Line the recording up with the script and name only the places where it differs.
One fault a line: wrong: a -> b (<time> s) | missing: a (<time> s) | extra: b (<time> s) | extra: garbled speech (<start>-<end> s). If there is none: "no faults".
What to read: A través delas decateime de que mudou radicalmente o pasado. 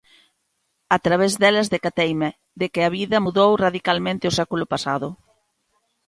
extra: a vida (2.8 s)
extra: século (4.4 s)